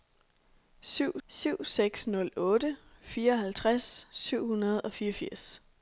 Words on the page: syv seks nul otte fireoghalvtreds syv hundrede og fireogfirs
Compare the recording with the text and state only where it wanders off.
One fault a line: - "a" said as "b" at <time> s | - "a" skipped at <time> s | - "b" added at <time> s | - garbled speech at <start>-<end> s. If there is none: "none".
- "syv" added at 1.3 s